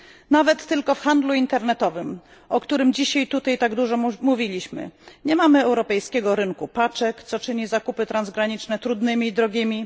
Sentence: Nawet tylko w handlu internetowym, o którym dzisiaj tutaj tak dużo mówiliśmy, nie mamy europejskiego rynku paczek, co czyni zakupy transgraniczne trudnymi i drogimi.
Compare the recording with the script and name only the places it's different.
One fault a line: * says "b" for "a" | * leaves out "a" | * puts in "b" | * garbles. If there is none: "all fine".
all fine